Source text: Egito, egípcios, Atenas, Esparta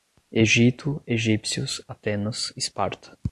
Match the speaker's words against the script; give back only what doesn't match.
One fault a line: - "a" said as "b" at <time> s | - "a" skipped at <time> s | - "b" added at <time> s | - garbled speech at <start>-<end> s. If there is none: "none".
none